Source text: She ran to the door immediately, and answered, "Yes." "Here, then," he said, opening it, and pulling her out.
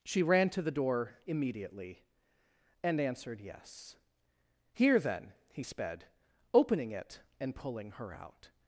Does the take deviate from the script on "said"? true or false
true